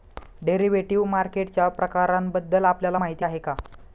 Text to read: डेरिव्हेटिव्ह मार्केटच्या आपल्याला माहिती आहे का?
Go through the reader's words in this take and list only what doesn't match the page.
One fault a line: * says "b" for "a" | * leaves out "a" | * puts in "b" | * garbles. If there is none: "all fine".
* puts in "प्रकारांबद्दल"